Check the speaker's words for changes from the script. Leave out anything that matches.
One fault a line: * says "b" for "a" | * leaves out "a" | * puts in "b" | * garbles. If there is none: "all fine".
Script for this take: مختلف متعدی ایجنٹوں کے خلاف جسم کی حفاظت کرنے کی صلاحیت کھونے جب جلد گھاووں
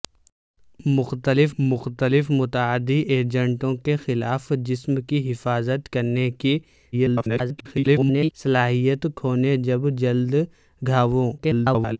* puts in "مختلف"
* garbles
* garbles